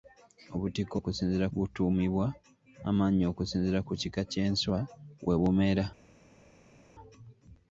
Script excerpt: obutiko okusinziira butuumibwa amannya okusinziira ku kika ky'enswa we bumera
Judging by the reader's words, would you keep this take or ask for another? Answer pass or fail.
pass